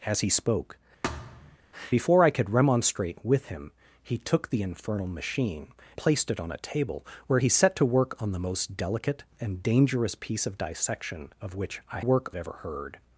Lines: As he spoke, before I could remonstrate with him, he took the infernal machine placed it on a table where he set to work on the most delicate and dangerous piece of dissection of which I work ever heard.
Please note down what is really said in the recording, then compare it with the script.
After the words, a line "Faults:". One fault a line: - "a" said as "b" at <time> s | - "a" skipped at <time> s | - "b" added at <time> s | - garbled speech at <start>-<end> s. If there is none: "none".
As he spoke, before I could remonstrate with him, he took the infernal machine placed it on a table where he set to work on the most delicate and dangerous piece of dissection of which I work ever heard.
Faults:
none